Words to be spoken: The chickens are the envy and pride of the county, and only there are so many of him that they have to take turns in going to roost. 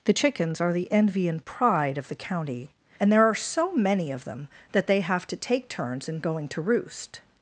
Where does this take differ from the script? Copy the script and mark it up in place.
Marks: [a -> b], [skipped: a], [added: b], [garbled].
The chickens are the envy and pride of the county, and [skipped: only] there are so many of [him -> them] that they have to take turns in going to roost.